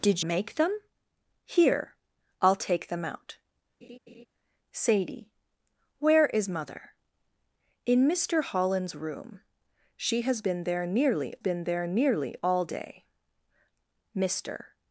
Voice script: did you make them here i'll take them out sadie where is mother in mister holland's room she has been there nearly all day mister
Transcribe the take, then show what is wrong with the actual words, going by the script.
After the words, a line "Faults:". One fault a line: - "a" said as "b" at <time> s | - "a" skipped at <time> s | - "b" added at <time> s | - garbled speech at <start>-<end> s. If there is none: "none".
did make them here i'll take them out sadie where is mother in mister holland's room she has been there nearly been there nearly all day mister
Faults:
- "you" skipped at 0.2 s
- "been there nearly" added at 11.4 s